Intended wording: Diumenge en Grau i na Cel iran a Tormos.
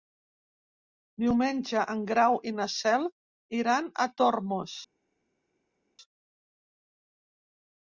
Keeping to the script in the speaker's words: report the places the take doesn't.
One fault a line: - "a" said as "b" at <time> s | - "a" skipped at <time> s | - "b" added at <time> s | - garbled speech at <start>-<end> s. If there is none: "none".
none